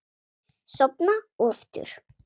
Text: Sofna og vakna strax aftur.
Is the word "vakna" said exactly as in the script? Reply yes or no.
no